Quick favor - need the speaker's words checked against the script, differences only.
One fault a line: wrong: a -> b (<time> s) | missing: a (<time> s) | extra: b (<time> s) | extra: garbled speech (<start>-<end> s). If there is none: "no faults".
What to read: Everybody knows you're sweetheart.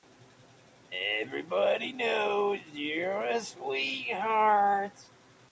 extra: a (3.2 s)